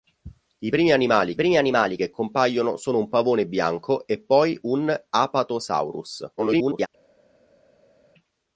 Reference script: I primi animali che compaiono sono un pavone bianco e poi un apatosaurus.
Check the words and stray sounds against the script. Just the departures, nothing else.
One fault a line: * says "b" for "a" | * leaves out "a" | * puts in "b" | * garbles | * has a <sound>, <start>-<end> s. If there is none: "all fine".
* puts in "primi animali"
* garbles